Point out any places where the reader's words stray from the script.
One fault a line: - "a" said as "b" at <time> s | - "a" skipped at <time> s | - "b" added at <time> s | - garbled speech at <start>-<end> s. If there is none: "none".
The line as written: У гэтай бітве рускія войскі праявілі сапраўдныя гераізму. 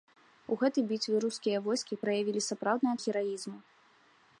none